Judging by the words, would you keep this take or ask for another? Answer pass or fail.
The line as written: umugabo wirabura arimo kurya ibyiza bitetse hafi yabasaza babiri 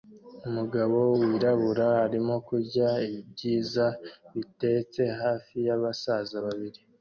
pass